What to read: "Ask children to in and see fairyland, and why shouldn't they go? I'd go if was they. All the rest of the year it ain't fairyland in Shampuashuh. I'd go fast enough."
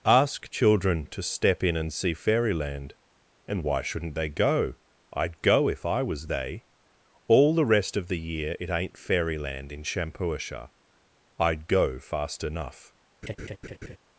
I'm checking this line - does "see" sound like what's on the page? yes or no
yes